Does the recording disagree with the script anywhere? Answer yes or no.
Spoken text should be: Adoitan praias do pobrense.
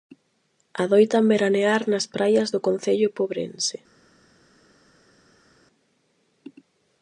yes